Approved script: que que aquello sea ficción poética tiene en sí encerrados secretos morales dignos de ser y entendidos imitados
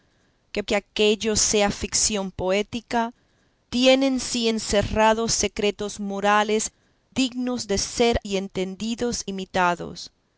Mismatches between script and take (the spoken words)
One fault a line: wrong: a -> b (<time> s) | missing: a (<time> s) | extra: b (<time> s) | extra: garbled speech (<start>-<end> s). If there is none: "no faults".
no faults